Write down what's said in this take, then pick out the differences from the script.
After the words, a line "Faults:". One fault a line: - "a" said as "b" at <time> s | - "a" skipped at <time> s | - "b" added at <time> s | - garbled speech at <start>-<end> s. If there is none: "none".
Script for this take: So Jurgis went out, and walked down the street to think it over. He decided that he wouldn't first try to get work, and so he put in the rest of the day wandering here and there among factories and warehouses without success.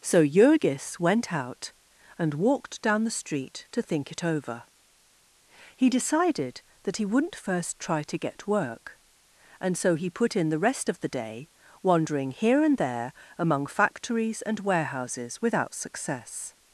So Jurgis went out, and walked down the street to think it over. He decided that he wouldn't first try to get work, and so he put in the rest of the day wandering here and there among factories and warehouses without success.
Faults:
none